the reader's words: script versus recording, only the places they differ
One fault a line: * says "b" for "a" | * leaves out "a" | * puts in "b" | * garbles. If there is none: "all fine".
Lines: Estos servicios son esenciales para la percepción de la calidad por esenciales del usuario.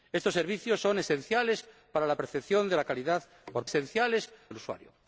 all fine